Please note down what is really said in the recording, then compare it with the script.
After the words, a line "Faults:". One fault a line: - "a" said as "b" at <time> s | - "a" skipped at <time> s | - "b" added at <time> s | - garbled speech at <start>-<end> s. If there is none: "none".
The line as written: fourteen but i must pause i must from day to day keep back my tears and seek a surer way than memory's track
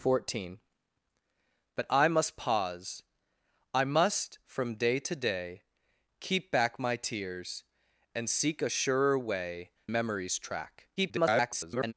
fourteen but i must pause i must from day to day keep back my tears and seek a surer way memory's track [garbled]
Faults:
- "than" skipped at 9.7 s
- garbled speech at 11.0-11.9 s